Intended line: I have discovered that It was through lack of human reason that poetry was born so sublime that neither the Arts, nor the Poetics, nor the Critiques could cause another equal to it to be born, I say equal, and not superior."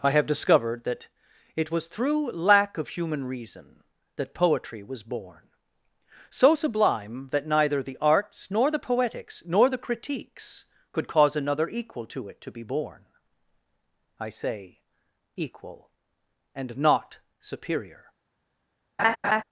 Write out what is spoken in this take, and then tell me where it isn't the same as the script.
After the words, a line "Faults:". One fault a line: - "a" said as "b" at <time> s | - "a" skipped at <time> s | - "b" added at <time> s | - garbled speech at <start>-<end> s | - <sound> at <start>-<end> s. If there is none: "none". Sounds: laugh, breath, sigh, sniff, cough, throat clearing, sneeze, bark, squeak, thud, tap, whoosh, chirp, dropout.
I have discovered that It was through lack of human reason that poetry was born so sublime that neither the Arts, nor the Poetics, nor the Critiques could cause another equal to it to be born, I say equal, and not superior."
Faults:
- laugh at 19.0-19.4 s